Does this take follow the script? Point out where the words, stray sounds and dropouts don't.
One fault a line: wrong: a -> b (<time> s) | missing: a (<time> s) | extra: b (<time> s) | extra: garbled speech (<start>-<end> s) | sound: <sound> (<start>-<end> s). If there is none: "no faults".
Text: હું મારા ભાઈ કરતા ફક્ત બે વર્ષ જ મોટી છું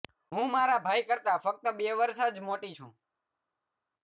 no faults